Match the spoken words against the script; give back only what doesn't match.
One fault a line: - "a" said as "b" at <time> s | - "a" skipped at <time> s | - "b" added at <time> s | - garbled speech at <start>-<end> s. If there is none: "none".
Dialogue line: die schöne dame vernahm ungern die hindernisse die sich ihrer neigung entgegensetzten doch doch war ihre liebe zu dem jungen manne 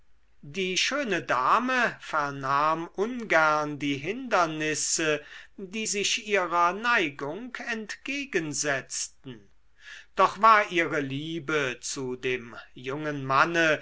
- "doch" skipped at 10.4 s